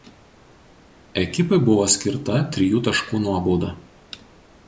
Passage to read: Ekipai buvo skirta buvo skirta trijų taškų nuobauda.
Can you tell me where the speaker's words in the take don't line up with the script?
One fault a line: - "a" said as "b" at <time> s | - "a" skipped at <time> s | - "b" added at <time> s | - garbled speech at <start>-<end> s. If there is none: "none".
- "buvo skirta" skipped at 2.4 s